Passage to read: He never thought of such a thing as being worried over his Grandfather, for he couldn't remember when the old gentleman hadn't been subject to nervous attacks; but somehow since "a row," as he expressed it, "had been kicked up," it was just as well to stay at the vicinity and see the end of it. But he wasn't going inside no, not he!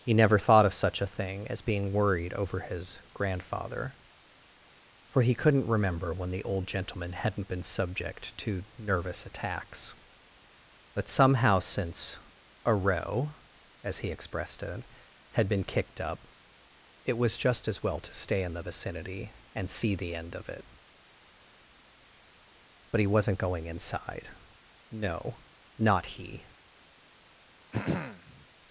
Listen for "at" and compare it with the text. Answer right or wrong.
wrong